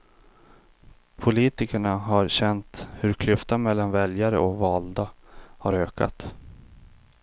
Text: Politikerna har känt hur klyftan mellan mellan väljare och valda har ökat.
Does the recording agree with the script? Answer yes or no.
no